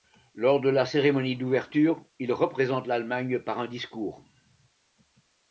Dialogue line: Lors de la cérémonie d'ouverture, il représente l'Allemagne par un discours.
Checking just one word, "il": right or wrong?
right